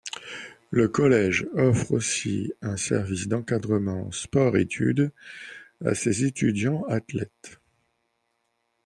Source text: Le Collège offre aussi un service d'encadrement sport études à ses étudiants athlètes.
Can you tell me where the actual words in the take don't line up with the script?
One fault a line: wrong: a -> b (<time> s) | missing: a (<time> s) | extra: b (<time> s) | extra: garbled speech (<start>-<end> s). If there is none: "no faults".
no faults